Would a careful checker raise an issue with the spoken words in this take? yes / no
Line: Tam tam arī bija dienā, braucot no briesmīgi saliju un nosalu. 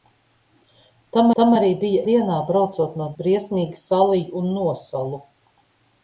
no